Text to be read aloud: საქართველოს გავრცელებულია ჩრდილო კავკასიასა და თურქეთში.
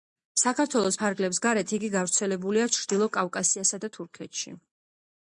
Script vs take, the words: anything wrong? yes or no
yes